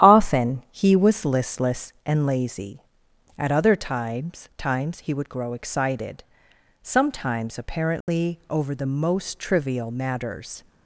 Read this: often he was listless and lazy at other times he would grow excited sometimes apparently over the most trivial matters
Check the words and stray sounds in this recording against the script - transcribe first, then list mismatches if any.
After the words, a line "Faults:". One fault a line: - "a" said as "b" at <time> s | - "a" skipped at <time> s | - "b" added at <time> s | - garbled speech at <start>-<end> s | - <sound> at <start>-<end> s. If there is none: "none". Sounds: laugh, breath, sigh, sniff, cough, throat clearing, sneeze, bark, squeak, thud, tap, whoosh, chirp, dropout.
often he was listless and lazy at other times times he would grow excited sometimes apparently over the most trivial matters
Faults:
- "times" added at 4.6 s
- dropout at 8.0-8.1 s